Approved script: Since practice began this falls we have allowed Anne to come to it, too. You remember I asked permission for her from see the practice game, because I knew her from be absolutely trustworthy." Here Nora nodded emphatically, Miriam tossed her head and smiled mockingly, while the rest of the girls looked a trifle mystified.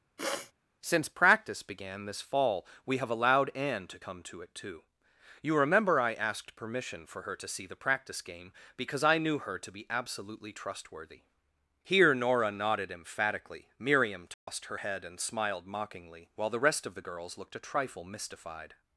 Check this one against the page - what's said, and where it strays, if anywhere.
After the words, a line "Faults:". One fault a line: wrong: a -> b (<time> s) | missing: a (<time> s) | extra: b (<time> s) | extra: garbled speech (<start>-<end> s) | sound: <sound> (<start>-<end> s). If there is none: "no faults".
Since practice began this fall we have allowed Anne to come to it, too. You remember I asked permission for her to see the practice game, because I knew her to be absolutely trustworthy." Here Nora nodded emphatically, Miriam tossed her head and smiled mockingly, while the rest of the girls looked a trifle mystified.
Faults:
sound: sniff (0.2-0.5 s)
wrong: falls -> fall (2.2 s)
wrong: from -> to (7.4 s)
wrong: from -> to (9.6 s)
sound: dropout (14.3-14.5 s)